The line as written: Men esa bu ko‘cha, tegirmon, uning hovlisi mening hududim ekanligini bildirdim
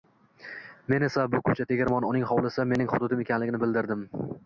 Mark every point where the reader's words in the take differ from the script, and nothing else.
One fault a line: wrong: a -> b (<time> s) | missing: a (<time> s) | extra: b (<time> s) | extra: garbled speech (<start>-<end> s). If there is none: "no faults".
no faults